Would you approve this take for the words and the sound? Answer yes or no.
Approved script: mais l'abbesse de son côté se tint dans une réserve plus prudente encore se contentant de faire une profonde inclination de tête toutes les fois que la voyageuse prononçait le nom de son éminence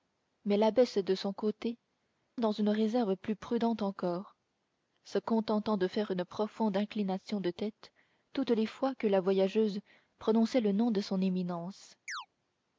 no